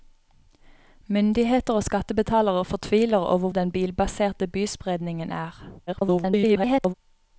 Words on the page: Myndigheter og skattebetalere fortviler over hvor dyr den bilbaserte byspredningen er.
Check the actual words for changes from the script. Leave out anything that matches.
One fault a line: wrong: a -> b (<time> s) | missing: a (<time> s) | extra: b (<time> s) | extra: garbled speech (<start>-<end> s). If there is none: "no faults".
missing: hvor dyr (3.5 s)
extra: garbled speech (5.9-6.9 s)